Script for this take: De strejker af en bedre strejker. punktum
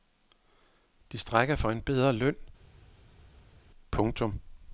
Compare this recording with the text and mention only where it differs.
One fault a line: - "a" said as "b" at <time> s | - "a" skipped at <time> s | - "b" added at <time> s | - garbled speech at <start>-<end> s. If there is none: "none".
- "af" said as "for" at 1.5 s
- "strejker" said as "løn" at 2.1 s